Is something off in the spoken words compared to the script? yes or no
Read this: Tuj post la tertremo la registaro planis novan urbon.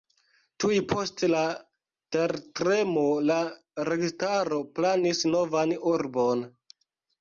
no